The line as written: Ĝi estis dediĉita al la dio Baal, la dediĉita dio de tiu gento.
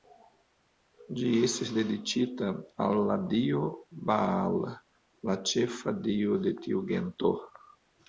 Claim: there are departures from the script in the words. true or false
true